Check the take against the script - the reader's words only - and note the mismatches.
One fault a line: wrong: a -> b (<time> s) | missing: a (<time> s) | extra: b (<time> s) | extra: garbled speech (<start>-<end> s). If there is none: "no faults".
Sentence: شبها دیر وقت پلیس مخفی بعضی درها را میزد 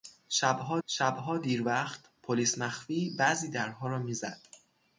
extra: شبها (0.9 s)